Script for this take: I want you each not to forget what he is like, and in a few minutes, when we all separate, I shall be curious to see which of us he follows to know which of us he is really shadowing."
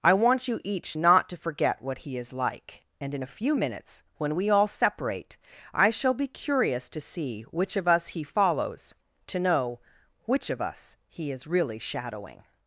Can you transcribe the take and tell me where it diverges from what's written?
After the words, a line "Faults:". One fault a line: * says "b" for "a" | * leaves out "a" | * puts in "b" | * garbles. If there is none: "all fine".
I want you each not to forget what he is like, and in a few minutes, when we all separate, I shall be curious to see which of us he follows to know which of us he is really shadowing."
Faults:
all fine